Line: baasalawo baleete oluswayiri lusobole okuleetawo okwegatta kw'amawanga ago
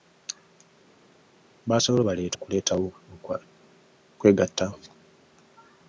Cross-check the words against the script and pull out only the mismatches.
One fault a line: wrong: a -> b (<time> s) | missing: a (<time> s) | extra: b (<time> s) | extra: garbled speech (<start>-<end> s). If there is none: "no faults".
missing: oluswayiri lusobole (2.4 s)
missing: kw'amawanga (4.6 s)